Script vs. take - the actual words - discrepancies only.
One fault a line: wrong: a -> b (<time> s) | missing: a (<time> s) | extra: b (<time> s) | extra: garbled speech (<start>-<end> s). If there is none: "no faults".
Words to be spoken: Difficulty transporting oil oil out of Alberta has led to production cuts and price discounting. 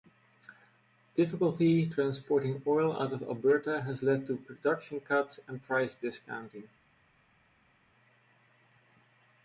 missing: oil (3.0 s)